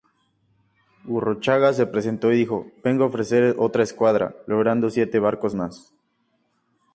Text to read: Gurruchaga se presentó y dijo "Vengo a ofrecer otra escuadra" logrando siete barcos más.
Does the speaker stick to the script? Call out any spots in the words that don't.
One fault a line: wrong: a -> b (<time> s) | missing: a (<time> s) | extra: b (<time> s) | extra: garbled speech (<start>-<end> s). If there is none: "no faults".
no faults